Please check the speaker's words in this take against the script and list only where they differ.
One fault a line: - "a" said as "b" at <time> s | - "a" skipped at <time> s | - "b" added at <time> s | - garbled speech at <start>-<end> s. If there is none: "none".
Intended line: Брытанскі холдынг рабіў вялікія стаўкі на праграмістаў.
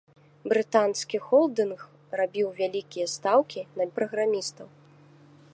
none